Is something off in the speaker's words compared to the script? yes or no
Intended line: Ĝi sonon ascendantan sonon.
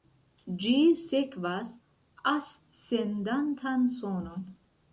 yes